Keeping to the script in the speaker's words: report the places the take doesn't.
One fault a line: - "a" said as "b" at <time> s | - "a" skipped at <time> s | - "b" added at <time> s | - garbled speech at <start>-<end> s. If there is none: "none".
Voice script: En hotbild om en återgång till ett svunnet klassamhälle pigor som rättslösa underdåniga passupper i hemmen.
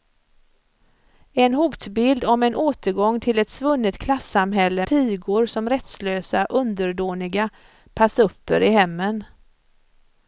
none